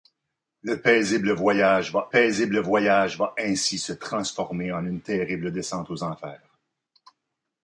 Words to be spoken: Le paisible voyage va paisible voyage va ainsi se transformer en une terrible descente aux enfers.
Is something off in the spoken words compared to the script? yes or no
no